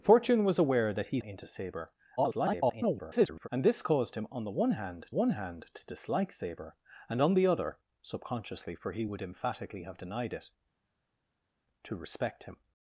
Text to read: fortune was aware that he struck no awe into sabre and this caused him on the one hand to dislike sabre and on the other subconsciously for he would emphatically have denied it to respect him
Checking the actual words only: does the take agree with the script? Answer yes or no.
no